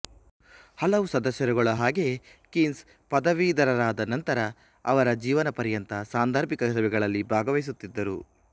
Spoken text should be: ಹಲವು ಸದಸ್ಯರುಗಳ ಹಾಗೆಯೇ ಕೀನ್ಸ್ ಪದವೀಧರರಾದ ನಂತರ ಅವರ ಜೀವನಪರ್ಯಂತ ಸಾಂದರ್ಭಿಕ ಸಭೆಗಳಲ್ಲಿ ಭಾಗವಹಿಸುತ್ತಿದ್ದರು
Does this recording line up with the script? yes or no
yes